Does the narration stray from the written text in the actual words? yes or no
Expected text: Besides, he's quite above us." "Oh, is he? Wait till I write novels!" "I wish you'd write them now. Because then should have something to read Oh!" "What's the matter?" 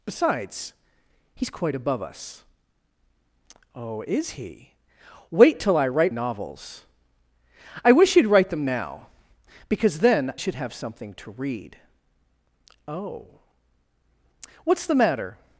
no